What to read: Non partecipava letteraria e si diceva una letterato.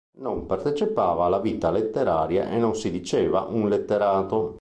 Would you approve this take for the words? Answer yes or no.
no